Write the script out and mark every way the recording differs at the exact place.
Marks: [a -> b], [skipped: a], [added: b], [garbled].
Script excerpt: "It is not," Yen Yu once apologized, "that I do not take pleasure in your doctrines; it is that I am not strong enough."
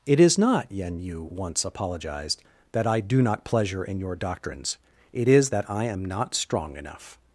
"It is not," Yen Yu once apologized, "that I do not [skipped: take] pleasure in your doctrines; it is that I am not strong enough."